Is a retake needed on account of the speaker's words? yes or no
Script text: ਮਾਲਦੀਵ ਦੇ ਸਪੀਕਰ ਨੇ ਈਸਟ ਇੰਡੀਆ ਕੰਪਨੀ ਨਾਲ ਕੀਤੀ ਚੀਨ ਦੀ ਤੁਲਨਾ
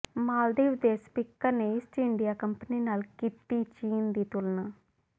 no